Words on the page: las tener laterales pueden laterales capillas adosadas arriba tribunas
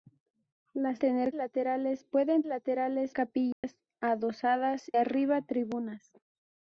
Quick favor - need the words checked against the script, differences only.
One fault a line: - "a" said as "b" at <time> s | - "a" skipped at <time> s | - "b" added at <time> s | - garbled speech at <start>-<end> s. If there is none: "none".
none